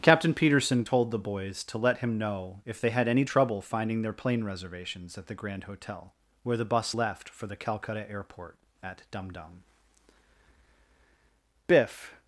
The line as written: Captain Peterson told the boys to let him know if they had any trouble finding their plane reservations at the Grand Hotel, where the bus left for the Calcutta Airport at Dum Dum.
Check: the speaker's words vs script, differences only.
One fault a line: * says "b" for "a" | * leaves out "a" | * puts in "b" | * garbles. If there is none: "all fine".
* puts in "Biff"